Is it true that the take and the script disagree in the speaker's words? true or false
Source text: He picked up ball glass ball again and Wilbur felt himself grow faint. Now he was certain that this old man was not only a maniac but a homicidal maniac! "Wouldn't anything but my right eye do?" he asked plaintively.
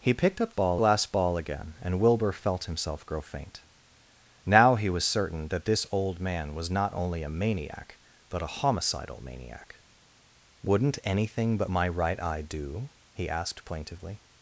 false